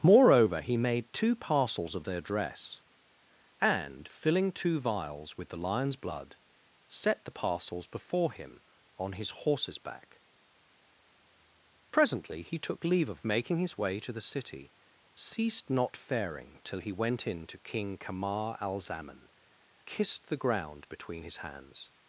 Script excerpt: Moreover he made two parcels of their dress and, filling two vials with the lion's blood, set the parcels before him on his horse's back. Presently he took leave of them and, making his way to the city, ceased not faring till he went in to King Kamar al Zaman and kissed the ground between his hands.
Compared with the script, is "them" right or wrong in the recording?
wrong